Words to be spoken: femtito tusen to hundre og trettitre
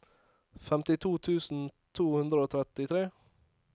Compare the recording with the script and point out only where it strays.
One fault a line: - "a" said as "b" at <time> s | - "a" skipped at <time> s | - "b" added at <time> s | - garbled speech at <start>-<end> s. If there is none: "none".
none